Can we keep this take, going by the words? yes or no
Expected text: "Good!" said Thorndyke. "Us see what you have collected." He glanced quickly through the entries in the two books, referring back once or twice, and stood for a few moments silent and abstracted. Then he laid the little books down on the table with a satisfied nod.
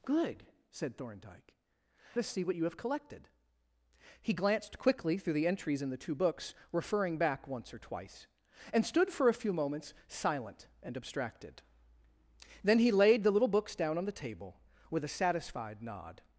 yes